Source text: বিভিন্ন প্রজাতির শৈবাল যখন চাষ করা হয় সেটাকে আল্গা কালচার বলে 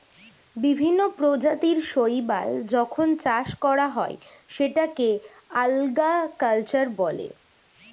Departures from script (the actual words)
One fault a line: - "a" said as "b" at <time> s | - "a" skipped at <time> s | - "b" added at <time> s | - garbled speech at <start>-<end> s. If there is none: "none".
none